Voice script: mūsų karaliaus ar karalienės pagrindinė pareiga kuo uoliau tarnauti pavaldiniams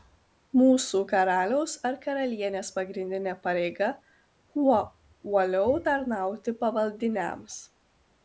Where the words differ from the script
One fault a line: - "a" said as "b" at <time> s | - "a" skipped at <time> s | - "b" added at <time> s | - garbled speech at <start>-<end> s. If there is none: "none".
none